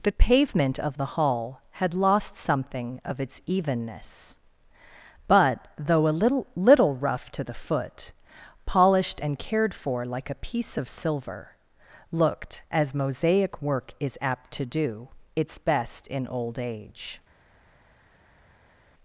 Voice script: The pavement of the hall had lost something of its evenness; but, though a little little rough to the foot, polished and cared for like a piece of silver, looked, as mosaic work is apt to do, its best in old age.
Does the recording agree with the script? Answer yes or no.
yes